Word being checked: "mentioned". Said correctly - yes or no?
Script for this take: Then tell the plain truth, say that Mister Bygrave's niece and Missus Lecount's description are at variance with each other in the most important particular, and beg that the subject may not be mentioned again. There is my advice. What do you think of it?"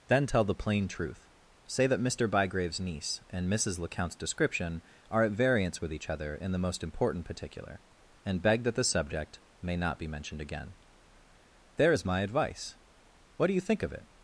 yes